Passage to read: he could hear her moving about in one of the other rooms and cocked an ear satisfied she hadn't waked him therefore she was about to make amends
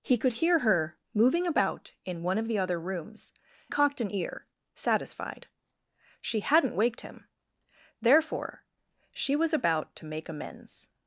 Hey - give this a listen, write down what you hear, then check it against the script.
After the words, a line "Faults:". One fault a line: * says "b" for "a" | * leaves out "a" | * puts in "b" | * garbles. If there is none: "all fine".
he could hear her moving about in one of the other rooms cocked an ear satisfied she hadn't waked him therefore she was about to make amends
Faults:
* leaves out "and"